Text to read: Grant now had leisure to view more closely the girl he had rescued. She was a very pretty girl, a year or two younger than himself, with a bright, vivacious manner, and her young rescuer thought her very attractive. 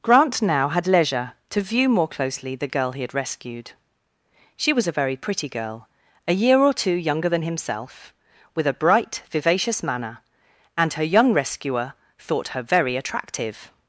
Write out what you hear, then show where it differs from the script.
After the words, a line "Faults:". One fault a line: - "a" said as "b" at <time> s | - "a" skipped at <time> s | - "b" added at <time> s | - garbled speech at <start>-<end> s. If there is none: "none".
Grant now had leisure to view more closely the girl he had rescued. She was a very pretty girl, a year or two younger than himself, with a bright, vivacious manner, and her young rescuer thought her very attractive.
Faults:
none